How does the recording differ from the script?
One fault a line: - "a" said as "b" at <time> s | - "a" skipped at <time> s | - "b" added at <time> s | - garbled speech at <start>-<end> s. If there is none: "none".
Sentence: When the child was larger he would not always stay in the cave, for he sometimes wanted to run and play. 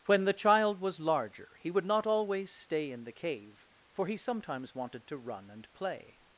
none